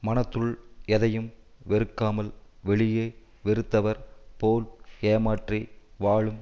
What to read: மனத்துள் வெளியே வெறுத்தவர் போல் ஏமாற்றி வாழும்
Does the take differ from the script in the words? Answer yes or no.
yes